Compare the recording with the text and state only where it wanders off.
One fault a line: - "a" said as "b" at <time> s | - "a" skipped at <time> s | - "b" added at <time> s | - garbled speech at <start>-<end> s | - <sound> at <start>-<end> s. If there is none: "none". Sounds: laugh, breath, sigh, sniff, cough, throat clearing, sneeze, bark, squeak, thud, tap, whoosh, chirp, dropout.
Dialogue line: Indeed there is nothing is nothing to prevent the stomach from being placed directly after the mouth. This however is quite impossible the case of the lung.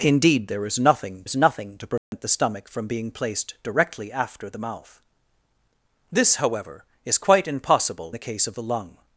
- dropout at 2.0-2.1 s